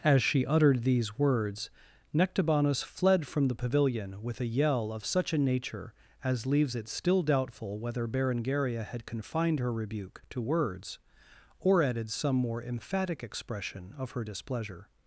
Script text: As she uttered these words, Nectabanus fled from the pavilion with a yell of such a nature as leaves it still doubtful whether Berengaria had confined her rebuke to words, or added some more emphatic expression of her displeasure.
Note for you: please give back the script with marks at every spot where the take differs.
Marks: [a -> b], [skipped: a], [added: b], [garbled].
As she uttered these words, Nectabanus fled from the pavilion with a yell of such a nature as leaves it still doubtful whether Berengaria had confined her rebuke to words, or added some more emphatic expression of her displeasure.